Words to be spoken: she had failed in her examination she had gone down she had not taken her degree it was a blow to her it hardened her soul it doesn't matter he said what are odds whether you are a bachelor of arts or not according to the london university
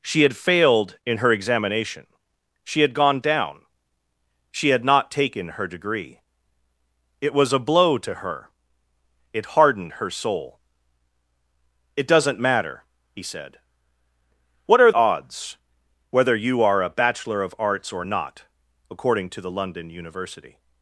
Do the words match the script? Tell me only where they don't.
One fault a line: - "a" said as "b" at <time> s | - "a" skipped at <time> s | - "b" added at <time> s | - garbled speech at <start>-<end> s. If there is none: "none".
none